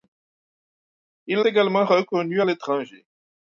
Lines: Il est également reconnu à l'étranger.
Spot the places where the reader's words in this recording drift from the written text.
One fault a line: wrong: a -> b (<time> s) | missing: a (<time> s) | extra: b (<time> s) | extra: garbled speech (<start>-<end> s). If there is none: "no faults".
missing: est (1.4 s)